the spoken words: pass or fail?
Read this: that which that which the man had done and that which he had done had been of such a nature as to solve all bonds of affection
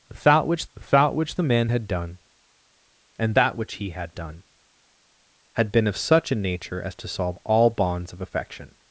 pass